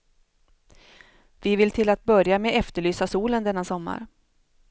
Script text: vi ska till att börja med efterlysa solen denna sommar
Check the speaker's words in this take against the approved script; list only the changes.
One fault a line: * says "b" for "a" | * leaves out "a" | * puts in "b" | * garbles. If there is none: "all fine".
* says "vill" for "ska"